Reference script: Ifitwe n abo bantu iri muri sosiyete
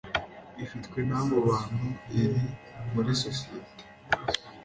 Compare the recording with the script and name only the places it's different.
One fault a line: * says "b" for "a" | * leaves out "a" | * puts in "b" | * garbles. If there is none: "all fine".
all fine